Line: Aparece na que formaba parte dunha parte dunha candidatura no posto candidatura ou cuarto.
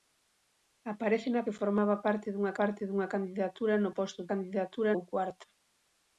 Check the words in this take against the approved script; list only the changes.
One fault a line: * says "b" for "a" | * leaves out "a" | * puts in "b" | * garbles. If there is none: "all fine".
all fine